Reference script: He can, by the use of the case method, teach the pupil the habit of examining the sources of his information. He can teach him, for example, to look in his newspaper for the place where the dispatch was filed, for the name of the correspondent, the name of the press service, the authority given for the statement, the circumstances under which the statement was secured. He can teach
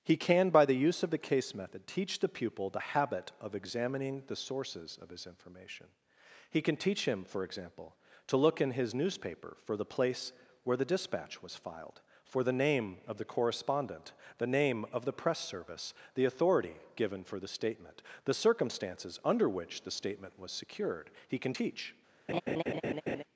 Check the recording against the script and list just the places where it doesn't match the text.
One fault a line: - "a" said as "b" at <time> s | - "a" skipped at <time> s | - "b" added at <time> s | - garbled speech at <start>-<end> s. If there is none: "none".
none